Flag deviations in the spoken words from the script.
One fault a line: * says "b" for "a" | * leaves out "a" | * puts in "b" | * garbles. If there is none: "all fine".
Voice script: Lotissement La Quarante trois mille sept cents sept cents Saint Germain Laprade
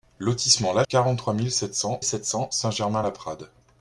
all fine